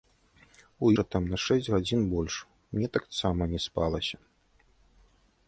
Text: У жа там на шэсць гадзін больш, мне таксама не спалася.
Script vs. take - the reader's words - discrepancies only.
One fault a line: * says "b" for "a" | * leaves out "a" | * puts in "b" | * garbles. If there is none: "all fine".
all fine